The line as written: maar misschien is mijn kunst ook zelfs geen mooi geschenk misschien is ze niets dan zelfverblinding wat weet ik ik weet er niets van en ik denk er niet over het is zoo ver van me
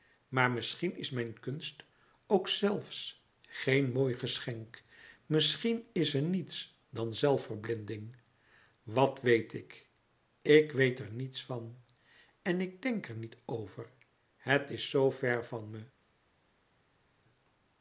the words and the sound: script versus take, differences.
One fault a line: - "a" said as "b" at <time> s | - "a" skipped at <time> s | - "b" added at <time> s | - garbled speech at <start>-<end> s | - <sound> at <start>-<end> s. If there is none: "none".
none